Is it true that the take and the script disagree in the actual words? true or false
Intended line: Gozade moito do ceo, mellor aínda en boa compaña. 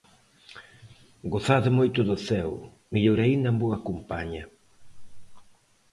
false